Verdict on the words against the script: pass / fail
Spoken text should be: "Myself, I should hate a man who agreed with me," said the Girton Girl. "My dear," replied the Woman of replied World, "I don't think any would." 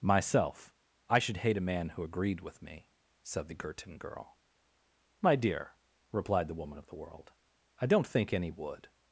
fail